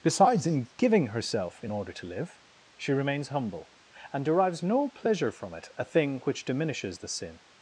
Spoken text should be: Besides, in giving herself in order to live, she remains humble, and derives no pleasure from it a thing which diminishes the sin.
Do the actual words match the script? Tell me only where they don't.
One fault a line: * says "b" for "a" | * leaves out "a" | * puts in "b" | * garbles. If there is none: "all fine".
all fine